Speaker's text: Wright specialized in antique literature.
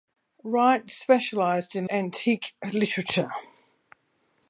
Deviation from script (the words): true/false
false